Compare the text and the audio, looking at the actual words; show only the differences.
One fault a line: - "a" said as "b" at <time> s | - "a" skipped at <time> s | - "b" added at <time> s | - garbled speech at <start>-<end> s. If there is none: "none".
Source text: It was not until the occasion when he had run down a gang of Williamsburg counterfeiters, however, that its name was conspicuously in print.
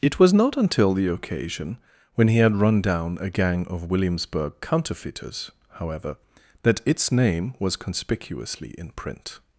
none